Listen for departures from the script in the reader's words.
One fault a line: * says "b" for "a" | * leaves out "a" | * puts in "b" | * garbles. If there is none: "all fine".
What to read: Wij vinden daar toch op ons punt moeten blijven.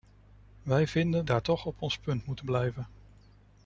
all fine